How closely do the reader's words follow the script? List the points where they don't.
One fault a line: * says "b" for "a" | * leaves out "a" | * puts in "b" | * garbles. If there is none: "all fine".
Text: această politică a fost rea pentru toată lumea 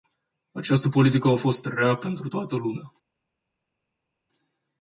all fine